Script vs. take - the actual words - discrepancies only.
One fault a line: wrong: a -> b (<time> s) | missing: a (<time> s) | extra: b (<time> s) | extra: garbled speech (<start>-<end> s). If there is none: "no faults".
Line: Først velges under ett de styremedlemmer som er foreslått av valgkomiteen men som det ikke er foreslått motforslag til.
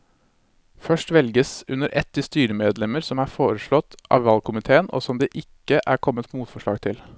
wrong: men -> og (4.9 s)
wrong: foreslått -> kommet (6.1 s)